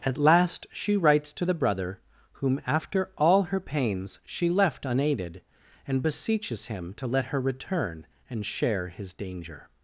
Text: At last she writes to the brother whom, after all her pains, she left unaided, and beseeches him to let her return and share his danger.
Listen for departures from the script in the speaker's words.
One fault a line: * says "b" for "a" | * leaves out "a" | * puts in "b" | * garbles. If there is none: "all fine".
all fine